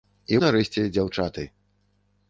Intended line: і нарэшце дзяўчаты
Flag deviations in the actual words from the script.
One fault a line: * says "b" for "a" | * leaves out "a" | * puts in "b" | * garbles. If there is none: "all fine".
all fine